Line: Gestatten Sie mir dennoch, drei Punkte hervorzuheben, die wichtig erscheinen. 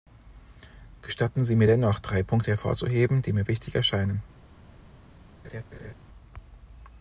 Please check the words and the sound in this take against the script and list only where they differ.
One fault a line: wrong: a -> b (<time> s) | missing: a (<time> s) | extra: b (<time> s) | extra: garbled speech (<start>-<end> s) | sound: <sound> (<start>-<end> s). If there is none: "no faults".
extra: mir (3.3 s)
sound: laugh (5.4-5.9 s)